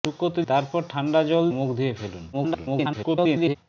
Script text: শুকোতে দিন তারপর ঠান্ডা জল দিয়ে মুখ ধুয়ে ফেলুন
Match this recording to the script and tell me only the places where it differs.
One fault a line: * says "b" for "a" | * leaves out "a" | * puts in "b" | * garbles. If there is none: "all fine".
* leaves out "দিন"
* leaves out "দিয়ে"
* garbles